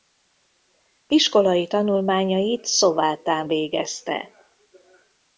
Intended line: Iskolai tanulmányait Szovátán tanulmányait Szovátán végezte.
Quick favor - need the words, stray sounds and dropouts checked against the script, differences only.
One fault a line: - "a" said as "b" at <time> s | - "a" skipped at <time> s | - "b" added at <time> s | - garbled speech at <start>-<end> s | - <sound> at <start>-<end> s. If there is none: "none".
- "tanulmányait Szovátán" skipped at 3.5 s